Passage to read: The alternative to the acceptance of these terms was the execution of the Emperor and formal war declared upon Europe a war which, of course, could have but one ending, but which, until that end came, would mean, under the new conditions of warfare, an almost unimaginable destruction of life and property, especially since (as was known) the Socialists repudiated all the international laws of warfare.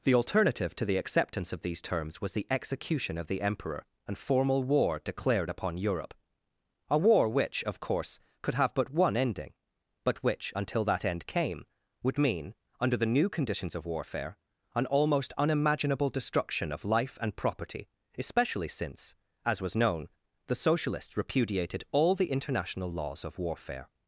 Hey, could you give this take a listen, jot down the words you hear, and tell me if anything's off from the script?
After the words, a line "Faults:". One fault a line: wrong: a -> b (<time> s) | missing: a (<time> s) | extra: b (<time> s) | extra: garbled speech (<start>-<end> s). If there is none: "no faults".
The alternative to the acceptance of these terms was the execution of the Emperor and formal war declared upon Europe a war which, of course, could have but one ending, but which, until that end came, would mean, under the new conditions of warfare, an almost unimaginable destruction of life and property, especially since (as was known) the Socialists repudiated all the international laws of warfare.
Faults:
no faults